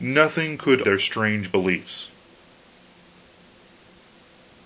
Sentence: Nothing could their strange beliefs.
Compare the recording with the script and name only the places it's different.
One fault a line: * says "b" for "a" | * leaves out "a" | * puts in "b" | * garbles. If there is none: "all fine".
all fine